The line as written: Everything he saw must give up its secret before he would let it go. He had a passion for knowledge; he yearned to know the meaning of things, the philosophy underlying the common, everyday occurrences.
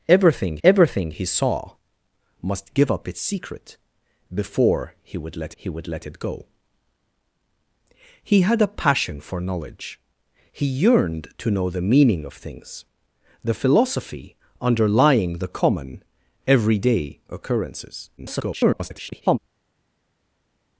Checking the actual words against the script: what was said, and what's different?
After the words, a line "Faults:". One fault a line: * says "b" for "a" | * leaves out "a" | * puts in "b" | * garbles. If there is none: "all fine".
Everything everything he saw must give up its secret before he would let he would let it go. He had a passion for knowledge; he yearned to know the meaning of things, the philosophy underlying the common, everyday occurrences. [garbled]
Faults:
* puts in "everything"
* puts in "he would let"
* garbles